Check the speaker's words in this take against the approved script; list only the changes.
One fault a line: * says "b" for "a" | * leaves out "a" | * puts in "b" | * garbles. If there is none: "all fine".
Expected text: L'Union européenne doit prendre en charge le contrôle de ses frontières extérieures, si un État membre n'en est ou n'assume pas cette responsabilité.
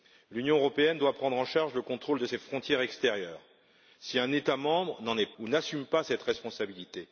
all fine